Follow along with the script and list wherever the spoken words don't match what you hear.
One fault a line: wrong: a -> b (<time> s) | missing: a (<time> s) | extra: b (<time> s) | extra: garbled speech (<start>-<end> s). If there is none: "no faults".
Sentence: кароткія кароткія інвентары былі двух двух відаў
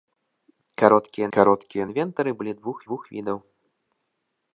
no faults